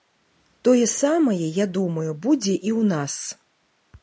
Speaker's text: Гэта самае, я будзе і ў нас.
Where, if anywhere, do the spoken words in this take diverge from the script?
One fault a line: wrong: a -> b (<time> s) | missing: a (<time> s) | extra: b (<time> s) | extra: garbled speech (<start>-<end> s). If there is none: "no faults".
wrong: Гэта -> Тое (0.7 s)
extra: думаю (1.8 s)